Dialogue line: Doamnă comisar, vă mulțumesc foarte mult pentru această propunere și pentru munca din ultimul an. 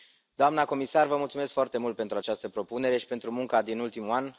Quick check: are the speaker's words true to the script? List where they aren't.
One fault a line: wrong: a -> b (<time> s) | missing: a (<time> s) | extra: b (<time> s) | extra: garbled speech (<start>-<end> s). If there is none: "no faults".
no faults